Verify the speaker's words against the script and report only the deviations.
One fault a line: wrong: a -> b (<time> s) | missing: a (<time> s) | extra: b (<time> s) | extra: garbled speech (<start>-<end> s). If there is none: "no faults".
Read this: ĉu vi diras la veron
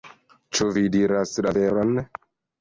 no faults